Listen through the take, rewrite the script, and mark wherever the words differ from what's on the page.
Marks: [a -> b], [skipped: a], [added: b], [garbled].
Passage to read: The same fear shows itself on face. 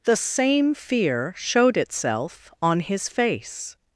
The same fear [shows -> showed] itself on [added: his] face.